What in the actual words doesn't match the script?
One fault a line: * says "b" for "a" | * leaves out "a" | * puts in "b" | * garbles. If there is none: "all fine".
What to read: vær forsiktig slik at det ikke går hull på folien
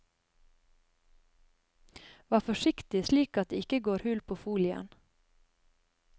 all fine